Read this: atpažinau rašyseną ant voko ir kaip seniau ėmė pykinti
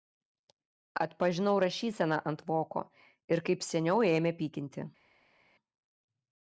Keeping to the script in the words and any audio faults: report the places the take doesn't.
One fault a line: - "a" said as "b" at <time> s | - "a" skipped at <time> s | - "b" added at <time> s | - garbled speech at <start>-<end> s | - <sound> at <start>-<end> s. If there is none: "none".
none